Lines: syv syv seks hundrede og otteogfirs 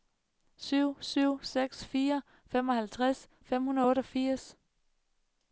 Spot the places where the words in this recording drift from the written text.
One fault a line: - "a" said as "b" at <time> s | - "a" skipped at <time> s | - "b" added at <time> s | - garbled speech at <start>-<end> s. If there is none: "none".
- "fire femoghalvtreds fem" added at 1.8 s